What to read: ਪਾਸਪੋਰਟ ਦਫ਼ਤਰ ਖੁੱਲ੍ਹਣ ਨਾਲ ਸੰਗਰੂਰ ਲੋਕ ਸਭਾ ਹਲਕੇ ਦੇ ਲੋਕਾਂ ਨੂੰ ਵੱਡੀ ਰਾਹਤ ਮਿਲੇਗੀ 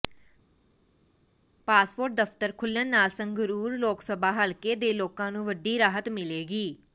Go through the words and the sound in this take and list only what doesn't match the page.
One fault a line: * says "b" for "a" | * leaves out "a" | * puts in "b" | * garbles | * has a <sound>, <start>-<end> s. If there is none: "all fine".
all fine